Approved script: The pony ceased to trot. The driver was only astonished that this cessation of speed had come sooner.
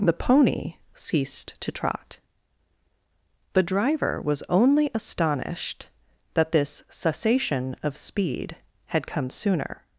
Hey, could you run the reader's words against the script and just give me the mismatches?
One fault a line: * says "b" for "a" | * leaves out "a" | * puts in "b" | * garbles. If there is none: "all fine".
all fine